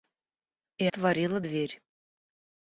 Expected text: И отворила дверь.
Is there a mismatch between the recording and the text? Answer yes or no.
no